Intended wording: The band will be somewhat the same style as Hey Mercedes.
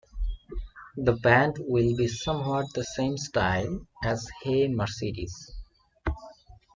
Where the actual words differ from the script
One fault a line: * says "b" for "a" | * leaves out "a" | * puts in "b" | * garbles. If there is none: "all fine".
all fine